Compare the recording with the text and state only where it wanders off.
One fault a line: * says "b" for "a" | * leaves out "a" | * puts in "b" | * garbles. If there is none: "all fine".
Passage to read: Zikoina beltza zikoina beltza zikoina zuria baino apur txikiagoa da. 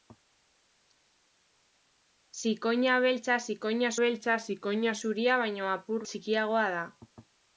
all fine